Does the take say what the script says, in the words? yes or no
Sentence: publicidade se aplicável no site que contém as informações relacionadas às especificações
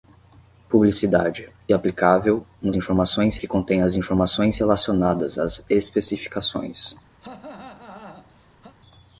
no